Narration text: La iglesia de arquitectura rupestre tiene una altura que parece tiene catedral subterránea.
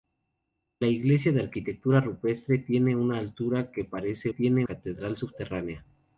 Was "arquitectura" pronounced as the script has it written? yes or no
yes